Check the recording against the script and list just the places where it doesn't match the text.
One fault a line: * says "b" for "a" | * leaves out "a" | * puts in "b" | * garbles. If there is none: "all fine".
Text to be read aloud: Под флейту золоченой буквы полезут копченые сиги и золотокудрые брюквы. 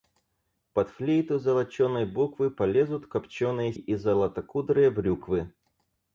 * leaves out "сиги"